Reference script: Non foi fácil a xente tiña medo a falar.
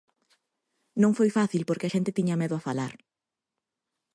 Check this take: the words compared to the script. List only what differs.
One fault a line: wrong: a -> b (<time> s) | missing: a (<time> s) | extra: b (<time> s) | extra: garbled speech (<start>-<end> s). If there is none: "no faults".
extra: porque (1.7 s)